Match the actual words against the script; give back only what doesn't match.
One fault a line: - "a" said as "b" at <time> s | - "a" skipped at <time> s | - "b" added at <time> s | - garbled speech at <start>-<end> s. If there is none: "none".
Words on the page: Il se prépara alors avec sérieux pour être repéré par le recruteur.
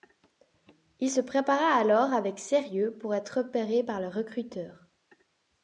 none